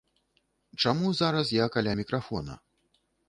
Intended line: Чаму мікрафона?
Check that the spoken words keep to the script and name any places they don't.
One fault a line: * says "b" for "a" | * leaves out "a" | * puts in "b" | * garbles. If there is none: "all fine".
* puts in "зараз я каля"